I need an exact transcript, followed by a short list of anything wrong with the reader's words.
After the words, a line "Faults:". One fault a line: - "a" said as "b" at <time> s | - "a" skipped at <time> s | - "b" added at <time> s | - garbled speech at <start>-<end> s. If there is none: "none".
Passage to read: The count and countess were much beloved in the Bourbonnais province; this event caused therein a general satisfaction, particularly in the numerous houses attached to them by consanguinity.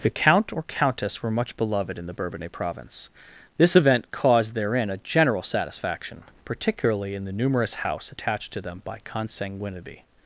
The count or countess were much beloved in the Bourbonnais province; this event caused therein a general satisfaction, particularly in the numerous house attached to them by consanguinity.
Faults:
- "and" said as "or" at 0.5 s
- "houses" said as "house" at 7.8 s